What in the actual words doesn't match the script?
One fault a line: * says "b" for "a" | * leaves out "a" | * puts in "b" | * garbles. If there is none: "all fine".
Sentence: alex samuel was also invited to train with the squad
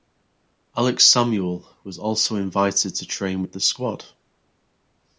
all fine